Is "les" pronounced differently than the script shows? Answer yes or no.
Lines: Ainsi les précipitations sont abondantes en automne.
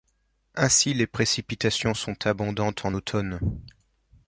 no